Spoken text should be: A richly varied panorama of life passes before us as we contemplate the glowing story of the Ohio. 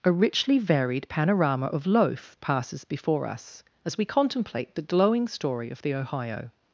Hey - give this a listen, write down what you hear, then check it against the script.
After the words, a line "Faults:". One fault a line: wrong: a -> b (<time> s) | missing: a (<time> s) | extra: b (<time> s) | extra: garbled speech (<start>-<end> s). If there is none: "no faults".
A richly varied panorama of loaf passes before us as we contemplate the glowing story of the Ohio.
Faults:
wrong: life -> loaf (1.9 s)